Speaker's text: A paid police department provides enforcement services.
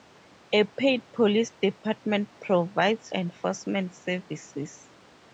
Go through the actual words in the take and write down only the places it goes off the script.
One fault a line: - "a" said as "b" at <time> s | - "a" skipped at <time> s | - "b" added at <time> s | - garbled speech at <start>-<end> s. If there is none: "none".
none